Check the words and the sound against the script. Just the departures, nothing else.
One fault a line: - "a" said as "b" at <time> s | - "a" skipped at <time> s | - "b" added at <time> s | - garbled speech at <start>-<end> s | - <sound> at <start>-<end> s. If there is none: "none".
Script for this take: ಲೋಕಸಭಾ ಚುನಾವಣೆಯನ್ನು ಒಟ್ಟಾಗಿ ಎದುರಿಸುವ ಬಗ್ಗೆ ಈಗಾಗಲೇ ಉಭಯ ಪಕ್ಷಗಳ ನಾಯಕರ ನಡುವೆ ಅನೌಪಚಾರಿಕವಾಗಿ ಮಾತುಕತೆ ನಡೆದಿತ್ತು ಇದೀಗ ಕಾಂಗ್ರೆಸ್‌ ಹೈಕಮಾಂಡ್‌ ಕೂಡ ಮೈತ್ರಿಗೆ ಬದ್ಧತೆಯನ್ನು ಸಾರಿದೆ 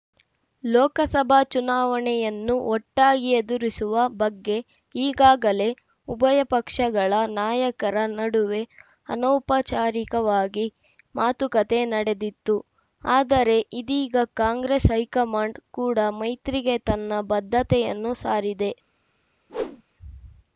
- "ಆದರೆ" added at 13.0 s
- "ತನ್ನ" added at 16.9 s
- whoosh at 19.5-19.8 s